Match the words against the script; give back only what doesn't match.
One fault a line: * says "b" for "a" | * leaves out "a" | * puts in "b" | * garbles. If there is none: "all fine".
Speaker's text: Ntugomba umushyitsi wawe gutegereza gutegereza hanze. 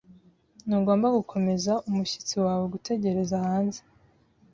* puts in "gukomeza"
* leaves out "gutegereza"